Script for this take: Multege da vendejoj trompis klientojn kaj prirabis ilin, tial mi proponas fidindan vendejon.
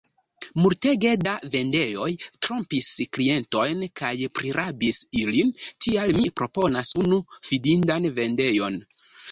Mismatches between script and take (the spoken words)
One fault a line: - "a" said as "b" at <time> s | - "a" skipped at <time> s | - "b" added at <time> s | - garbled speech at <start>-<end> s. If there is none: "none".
- "unu" added at 7.1 s